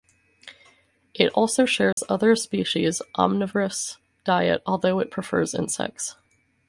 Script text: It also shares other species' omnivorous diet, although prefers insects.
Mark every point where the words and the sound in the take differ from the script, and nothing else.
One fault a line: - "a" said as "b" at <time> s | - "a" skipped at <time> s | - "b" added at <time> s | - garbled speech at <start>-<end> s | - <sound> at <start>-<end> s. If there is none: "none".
- dropout at 1.9-2.0 s
- "it" added at 5.0 s